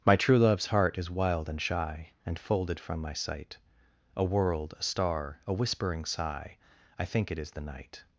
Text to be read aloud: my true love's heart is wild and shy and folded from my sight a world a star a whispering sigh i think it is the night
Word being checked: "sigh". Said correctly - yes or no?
yes